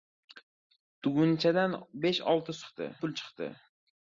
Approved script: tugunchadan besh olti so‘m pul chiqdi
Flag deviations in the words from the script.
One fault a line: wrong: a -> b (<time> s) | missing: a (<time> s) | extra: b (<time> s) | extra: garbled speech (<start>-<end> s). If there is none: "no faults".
wrong: so‘m -> chiqdi (2.6 s)